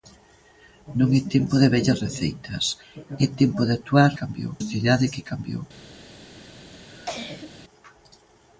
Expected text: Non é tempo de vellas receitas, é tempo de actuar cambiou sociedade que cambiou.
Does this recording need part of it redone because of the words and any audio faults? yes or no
yes